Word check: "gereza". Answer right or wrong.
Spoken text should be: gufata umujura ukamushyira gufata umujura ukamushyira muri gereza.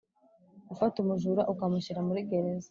right